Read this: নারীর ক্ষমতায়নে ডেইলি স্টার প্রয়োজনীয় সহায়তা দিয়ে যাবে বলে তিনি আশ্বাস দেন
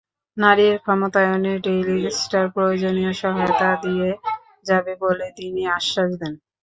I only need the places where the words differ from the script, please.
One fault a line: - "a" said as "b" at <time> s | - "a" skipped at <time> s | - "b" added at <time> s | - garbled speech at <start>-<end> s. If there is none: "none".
none